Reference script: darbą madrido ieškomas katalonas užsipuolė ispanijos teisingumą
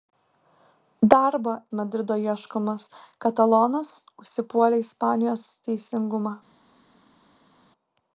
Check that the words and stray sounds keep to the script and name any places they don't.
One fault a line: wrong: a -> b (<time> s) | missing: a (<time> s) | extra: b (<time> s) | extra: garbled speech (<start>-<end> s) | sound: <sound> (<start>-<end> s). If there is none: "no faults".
no faults